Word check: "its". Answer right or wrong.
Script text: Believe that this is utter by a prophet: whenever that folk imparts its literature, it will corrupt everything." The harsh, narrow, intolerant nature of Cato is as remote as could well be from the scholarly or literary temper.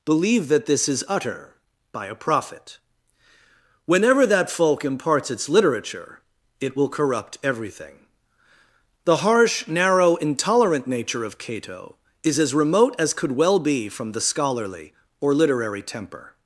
right